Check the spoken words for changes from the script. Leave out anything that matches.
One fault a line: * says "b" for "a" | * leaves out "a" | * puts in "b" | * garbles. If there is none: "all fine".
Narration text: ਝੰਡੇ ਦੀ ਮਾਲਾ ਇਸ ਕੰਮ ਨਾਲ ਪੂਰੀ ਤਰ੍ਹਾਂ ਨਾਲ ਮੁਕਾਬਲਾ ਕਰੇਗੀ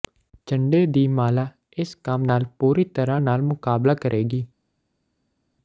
all fine